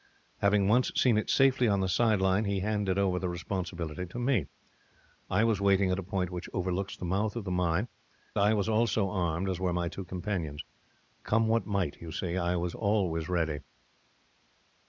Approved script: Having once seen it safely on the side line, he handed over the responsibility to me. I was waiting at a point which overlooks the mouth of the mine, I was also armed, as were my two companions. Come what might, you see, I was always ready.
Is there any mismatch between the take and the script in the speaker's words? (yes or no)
no